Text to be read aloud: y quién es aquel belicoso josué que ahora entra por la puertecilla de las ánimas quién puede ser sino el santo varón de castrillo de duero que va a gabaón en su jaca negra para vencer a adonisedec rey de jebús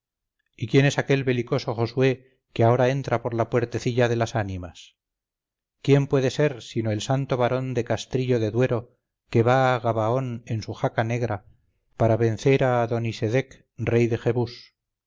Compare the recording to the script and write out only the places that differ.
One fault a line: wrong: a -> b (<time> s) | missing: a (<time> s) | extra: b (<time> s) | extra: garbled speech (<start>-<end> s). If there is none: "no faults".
no faults